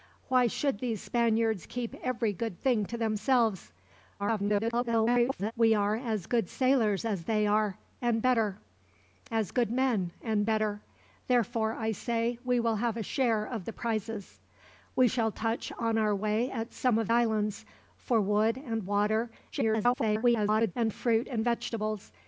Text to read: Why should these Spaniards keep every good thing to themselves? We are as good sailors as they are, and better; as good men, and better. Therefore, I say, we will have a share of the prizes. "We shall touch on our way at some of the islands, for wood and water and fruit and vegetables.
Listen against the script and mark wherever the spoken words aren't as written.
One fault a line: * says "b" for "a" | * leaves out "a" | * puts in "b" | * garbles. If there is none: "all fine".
* garbles
* leaves out "the"
* garbles